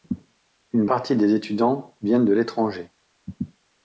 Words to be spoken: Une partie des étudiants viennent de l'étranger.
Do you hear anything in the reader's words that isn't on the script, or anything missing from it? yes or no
no